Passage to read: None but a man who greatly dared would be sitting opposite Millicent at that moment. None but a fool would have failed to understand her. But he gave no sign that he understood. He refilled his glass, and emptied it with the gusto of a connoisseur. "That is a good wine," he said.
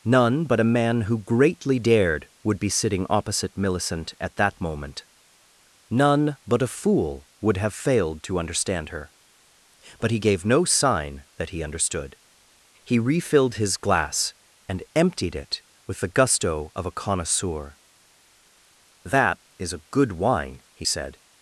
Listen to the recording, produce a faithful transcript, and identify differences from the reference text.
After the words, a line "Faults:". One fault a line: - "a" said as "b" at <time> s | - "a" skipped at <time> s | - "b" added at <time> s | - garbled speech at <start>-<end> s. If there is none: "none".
None but a man who greatly dared would be sitting opposite Millicent at that moment. None but a fool would have failed to understand her. But he gave no sign that he understood. He refilled his glass, and emptied it with the gusto of a connoisseur. "That is a good wine," he said.
Faults:
none